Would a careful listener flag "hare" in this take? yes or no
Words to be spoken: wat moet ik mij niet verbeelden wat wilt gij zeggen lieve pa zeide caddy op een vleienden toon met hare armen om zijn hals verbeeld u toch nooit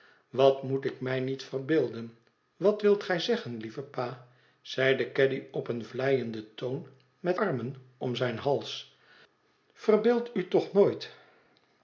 yes